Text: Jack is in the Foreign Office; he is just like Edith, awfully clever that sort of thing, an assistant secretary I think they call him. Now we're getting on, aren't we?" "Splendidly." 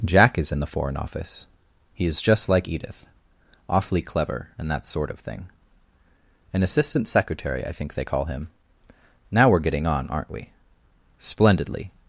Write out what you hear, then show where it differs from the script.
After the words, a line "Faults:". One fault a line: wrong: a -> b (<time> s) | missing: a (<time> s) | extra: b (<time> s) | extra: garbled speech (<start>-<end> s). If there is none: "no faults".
Jack is in the Foreign Office; he is just like Edith, awfully clever and that sort of thing, an assistant secretary I think they call him. Now we're getting on, aren't we?" "Splendidly."
Faults:
extra: and (4.6 s)